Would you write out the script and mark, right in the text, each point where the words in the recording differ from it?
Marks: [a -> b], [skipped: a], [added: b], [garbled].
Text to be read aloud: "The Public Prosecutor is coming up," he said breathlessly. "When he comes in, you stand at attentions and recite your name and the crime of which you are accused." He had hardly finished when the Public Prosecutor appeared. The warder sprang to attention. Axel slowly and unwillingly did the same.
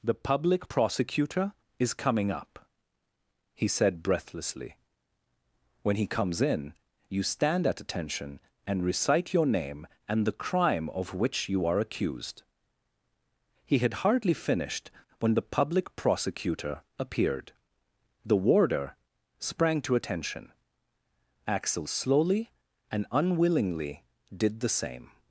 "The Public Prosecutor is coming up," he said breathlessly. "When he comes in, you stand at [attentions -> attention] and recite your name and the crime of which you are accused." He had hardly finished when the Public Prosecutor appeared. The warder sprang to attention. Axel slowly and unwillingly did the same.